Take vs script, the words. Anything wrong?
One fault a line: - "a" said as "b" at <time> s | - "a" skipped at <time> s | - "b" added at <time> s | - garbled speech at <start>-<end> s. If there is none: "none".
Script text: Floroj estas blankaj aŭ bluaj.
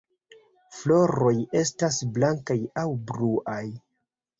none